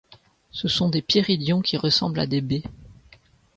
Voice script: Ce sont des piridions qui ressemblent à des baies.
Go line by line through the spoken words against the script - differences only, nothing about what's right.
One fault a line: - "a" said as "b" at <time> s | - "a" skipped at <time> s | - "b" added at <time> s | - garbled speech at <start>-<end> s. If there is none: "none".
none